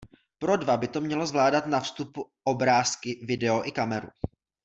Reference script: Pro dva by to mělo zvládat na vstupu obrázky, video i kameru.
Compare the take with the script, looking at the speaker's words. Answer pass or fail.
pass